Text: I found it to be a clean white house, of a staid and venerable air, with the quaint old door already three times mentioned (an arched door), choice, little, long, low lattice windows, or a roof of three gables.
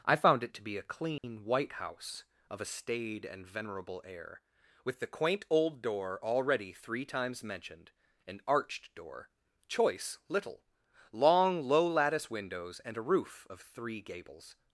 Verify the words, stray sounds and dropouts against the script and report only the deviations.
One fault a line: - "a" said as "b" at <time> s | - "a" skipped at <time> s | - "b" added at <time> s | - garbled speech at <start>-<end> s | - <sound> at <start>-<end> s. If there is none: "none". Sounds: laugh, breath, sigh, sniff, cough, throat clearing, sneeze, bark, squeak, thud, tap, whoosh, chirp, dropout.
- dropout at 1.2-1.2 s
- "or" said as "and" at 12.8 s